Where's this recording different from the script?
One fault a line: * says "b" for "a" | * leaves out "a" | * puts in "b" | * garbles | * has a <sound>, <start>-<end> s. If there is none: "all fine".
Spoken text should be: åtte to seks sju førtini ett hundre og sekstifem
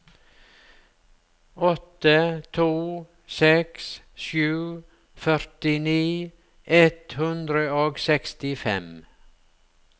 all fine